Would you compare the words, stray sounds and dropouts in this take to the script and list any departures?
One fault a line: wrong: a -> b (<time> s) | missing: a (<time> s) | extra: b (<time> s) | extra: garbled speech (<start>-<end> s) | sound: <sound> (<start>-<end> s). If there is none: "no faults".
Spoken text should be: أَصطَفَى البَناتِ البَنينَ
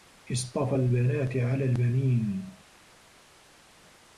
extra: عَلَى (1.4 s)